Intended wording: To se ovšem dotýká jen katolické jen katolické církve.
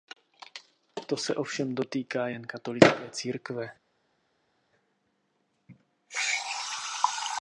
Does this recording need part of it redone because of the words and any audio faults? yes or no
yes